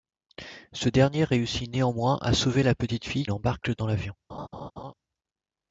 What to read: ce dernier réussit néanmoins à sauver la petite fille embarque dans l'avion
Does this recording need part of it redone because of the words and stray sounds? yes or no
yes